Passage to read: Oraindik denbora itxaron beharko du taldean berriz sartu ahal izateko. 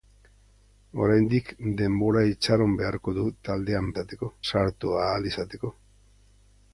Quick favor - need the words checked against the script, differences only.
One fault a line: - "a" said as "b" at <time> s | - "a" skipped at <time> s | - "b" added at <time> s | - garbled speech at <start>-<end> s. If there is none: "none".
- "berriz" said as "izateko" at 3.9 s